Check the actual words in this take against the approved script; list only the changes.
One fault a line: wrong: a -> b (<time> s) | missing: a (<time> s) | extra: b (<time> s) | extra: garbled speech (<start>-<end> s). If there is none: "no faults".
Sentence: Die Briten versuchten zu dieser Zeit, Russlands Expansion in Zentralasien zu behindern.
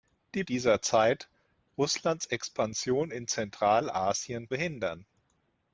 missing: Briten versuchten zu (0.4 s)
missing: zu (4.5 s)